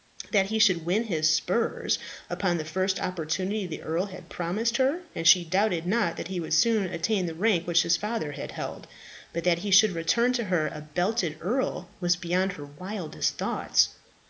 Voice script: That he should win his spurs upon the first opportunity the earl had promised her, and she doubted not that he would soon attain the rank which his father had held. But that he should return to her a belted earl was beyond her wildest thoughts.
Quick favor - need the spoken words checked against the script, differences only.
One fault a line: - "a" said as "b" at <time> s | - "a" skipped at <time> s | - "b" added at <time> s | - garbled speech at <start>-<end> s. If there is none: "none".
none